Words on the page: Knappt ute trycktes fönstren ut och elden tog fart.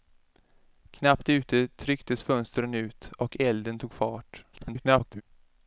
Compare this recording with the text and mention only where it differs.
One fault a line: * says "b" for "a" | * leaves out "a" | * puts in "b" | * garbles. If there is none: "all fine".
* garbles